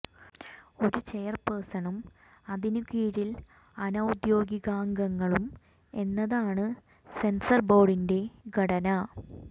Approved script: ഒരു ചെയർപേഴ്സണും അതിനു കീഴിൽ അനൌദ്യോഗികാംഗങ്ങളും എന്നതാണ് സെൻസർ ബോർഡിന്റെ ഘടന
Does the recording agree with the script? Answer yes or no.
yes